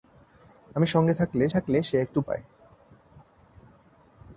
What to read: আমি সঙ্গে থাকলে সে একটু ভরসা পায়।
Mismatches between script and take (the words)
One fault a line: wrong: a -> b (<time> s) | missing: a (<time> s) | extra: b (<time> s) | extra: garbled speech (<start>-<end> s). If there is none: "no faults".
extra: থাকলে (1.5 s)
missing: ভরসা (2.2 s)